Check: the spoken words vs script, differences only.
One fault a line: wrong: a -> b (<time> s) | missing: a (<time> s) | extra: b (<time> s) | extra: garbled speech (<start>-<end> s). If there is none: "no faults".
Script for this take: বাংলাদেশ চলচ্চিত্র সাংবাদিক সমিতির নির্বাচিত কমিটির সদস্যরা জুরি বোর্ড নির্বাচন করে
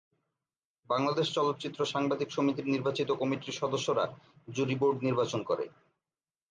no faults